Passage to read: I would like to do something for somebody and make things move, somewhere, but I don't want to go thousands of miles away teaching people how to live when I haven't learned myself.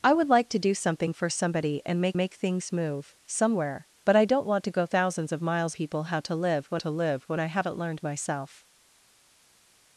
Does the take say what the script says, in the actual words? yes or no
no